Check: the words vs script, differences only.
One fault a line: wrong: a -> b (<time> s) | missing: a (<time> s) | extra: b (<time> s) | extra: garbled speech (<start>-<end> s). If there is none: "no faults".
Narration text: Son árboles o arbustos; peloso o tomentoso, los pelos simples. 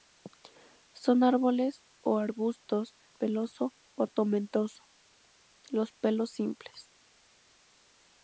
no faults